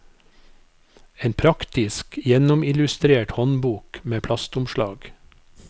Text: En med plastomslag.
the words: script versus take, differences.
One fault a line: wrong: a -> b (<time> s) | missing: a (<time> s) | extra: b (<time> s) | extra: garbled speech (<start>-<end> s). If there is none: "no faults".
extra: praktisk gjennomillustrert håndbok (1.3 s)